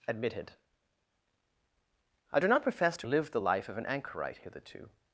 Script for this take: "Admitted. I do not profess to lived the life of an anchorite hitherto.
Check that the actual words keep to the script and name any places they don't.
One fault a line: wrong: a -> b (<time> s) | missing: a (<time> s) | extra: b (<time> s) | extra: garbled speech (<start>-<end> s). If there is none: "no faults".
no faults